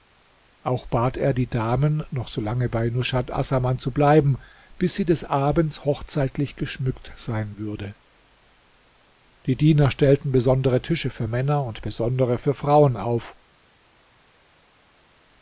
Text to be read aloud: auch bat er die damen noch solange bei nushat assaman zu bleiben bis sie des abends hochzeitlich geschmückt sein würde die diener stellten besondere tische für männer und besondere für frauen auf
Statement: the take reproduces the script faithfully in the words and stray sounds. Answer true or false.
true